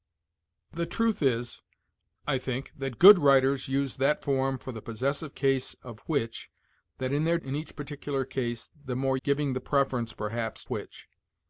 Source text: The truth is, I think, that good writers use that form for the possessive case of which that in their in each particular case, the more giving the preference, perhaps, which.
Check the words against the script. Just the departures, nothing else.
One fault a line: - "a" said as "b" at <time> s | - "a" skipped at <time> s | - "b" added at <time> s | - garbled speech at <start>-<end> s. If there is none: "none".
none